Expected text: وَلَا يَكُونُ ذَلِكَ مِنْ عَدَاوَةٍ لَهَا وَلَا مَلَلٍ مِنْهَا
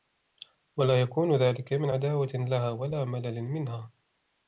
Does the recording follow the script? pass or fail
pass